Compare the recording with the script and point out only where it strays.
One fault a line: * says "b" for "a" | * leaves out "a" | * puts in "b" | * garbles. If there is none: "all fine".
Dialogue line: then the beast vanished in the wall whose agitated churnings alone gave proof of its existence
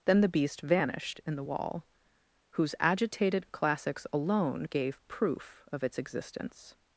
* says "classics" for "churnings"